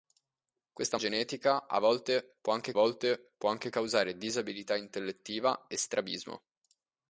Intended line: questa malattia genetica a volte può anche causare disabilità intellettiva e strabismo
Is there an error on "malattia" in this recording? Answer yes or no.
yes